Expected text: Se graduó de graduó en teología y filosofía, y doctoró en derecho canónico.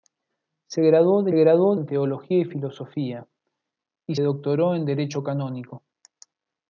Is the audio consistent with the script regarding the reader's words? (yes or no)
yes